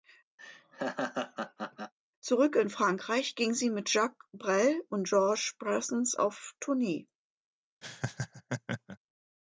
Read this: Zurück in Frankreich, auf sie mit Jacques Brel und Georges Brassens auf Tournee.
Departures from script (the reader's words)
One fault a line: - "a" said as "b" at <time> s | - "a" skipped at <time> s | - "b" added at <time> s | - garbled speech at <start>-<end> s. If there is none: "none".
- "auf" said as "ging" at 3.4 s